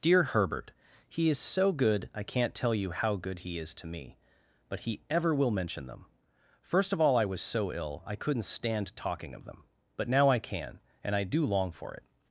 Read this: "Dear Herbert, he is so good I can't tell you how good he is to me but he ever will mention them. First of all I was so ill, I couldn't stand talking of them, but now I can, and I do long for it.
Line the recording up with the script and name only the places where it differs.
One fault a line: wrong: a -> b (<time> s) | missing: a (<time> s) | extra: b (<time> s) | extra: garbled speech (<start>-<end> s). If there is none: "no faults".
no faults